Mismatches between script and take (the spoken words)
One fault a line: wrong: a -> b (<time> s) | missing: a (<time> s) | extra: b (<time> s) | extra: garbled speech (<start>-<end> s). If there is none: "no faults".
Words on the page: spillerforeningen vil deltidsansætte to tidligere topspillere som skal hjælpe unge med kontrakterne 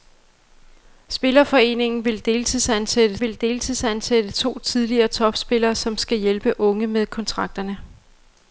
extra: vil deltidsansætte (3.2 s)